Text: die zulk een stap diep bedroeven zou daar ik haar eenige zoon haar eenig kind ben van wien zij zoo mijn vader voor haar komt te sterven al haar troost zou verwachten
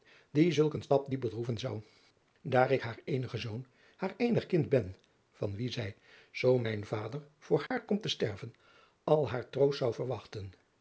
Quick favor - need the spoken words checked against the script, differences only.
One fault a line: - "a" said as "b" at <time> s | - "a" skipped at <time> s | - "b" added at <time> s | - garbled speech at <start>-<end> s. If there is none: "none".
none